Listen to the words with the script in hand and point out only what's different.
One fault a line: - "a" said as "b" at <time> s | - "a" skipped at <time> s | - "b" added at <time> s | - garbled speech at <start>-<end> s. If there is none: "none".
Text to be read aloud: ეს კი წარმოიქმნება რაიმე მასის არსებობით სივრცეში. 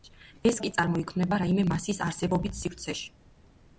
none